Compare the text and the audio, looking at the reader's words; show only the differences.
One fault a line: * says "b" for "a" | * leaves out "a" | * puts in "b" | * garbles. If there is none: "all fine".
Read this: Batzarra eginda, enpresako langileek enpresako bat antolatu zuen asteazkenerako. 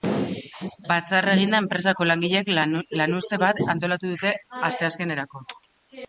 * says "lanuzte" for "enpresako"
* says "dute" for "zuen"